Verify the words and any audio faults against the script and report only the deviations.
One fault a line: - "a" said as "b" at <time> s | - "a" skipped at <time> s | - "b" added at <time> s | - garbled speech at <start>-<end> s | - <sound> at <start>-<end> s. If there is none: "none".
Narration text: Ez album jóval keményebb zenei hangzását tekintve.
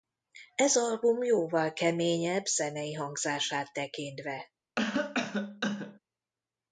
- cough at 4.8-6.0 s